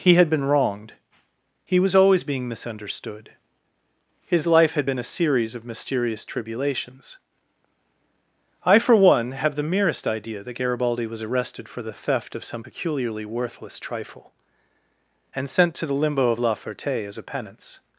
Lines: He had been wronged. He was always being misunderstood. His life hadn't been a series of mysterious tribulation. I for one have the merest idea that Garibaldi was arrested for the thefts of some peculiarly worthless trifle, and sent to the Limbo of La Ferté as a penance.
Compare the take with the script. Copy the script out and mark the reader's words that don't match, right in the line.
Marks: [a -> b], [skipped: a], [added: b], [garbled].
He had been wronged. He was always being misunderstood. His life [hadn't -> had] been a series of mysterious [tribulation. -> tribulations] I for one have the merest idea that Garibaldi was arrested for the [thefts -> theft] of some peculiarly worthless trifle, and sent to the Limbo of La Ferté as a penance.